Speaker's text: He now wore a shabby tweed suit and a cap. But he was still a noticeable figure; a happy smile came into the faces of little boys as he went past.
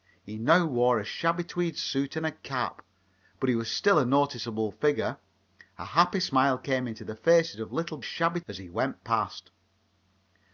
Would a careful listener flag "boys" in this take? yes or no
yes